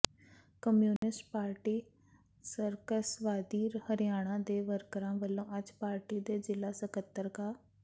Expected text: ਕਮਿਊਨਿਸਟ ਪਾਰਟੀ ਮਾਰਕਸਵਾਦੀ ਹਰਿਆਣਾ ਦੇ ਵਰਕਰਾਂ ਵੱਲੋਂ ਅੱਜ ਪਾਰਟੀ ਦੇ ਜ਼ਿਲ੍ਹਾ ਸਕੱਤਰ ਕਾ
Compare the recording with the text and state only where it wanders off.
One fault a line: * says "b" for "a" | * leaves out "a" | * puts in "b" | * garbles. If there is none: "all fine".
all fine